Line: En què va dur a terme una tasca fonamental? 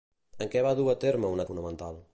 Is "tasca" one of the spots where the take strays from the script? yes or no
yes